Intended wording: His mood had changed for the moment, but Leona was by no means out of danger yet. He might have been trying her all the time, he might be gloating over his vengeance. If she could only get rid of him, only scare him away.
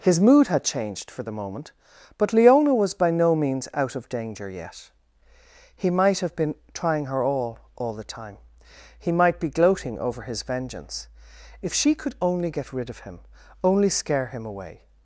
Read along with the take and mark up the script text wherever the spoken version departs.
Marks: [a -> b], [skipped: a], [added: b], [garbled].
His mood had changed for the moment, but Leona was by no means out of danger yet. He might have been trying her all [added: all] the time, he might be gloating over his vengeance. If she could only get rid of him, only scare him away.